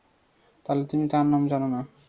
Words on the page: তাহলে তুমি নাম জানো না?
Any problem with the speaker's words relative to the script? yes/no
yes